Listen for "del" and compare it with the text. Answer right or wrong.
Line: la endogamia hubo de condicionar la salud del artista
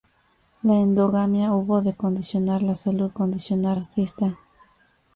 wrong